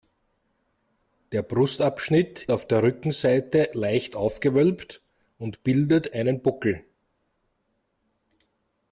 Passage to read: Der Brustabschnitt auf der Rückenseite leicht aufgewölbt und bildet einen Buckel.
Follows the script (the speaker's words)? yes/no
yes